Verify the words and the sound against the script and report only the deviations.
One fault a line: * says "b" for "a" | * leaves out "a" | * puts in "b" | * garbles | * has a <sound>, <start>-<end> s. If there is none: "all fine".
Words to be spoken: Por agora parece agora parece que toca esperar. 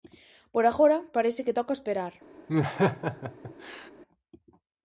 * leaves out "agora parece"
* has a laugh, 2.5-3.9 s